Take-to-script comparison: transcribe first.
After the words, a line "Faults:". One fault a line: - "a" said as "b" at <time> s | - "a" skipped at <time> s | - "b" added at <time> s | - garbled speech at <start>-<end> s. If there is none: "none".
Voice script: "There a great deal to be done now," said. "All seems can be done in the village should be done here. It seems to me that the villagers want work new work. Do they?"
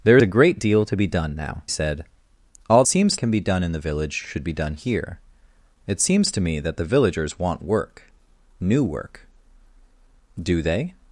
"There a great deal to be done now," said. "All seems can be done in the village should be done here. It seems to me that the villagers want work new work. Do they?"
Faults:
none